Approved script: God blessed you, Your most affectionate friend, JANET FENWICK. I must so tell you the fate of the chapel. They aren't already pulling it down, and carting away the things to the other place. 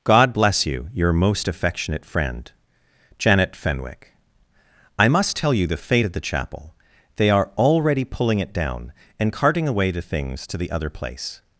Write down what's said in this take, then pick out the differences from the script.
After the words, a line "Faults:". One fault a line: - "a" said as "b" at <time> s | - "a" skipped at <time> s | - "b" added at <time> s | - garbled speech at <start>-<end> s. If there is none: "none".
God bless you, Your most affectionate friend, JANET FENWICK. I must tell you the fate of the chapel. They are already pulling it down, and carting away the things to the other place.
Faults:
- "blessed" said as "bless" at 0.3 s
- "so" skipped at 5.4 s
- "aren't" said as "are" at 7.3 s